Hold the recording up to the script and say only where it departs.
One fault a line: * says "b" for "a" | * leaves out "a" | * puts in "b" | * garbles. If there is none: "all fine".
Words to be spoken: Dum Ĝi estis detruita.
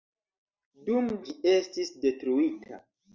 all fine